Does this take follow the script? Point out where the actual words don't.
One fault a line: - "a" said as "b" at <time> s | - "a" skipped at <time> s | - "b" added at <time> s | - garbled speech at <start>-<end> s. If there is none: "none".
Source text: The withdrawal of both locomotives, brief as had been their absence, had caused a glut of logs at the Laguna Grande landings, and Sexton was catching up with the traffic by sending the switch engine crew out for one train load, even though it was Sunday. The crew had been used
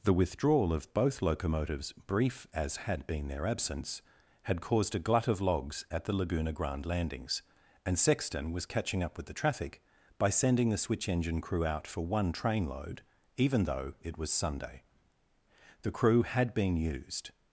none